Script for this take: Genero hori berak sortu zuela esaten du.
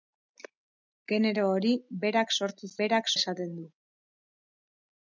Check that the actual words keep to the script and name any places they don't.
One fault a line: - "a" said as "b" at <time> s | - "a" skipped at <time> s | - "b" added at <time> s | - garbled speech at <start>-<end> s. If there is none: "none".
- "zuela" said as "berak" at 2.8 s